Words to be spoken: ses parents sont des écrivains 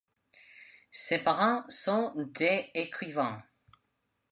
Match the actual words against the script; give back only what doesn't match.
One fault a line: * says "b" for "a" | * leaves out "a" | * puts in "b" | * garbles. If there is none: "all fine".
all fine